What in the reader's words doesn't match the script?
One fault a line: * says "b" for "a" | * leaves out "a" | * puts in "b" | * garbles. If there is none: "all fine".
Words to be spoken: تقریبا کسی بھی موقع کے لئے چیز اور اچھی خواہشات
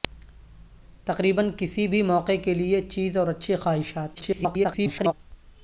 * garbles